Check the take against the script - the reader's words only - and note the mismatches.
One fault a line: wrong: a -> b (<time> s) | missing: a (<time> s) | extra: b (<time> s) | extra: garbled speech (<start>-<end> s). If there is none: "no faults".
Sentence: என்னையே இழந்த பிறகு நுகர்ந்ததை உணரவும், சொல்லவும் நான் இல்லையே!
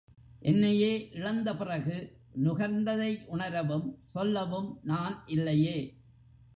no faults